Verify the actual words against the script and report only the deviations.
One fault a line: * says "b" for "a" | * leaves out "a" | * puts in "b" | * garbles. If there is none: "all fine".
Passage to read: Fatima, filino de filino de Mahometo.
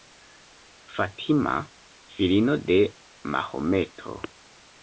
* leaves out "filino de"